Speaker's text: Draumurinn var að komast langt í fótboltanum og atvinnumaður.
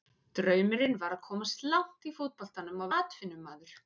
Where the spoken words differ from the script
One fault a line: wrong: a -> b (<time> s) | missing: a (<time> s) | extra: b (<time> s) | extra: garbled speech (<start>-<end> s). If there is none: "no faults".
no faults